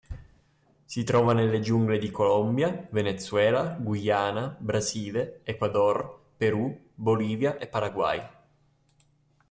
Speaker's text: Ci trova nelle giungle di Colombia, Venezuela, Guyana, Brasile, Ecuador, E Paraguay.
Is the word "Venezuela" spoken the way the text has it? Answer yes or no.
yes